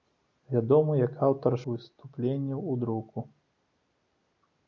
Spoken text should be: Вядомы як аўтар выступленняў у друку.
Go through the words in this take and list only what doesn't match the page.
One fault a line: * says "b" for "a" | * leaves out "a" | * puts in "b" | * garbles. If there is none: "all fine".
all fine